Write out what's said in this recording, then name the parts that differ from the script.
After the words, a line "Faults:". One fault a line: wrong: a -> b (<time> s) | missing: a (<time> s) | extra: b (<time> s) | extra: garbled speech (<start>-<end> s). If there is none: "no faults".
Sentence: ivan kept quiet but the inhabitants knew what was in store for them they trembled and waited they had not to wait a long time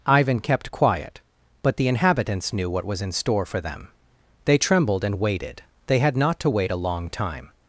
ivan kept quiet but the inhabitants knew what was in store for them they trembled and waited they had not to wait a long time
Faults:
no faults